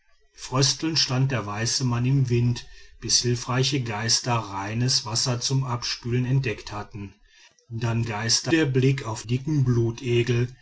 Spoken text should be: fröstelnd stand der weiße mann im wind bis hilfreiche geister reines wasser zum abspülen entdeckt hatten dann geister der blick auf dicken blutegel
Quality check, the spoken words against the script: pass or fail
pass